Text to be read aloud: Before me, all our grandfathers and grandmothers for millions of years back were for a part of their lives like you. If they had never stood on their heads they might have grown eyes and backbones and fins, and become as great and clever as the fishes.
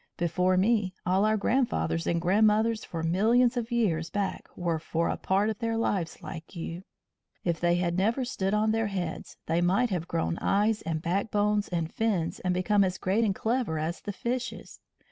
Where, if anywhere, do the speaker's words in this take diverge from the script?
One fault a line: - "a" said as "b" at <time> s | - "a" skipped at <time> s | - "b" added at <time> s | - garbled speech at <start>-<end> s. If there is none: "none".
none